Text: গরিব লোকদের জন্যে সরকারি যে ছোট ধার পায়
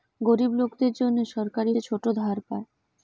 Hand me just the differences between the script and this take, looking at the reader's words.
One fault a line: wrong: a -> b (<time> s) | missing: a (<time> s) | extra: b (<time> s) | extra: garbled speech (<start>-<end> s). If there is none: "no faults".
no faults